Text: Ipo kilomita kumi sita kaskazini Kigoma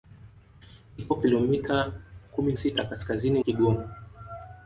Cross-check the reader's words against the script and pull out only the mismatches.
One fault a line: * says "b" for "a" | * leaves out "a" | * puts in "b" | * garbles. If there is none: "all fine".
all fine